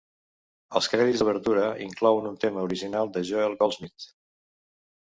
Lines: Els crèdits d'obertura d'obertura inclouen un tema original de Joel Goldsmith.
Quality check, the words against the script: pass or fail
fail